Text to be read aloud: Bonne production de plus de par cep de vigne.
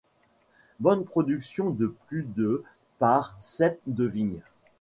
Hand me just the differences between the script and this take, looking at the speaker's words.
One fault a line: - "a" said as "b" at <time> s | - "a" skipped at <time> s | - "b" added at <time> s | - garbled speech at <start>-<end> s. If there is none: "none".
none